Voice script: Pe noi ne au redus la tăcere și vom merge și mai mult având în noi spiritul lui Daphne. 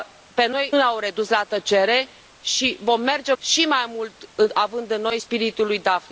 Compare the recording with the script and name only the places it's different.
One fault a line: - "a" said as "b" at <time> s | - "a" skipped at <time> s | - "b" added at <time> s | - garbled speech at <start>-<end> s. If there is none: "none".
none